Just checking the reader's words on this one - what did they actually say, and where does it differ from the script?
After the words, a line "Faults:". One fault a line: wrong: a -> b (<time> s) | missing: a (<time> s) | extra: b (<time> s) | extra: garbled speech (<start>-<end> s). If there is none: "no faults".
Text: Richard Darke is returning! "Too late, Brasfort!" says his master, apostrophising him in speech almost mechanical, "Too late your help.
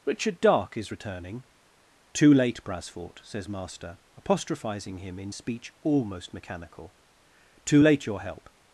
Richard Darke is returning! "Too late, Brasfort!" says master, apostrophising him in speech almost mechanical, "Too late your help.
Faults:
missing: his (3.5 s)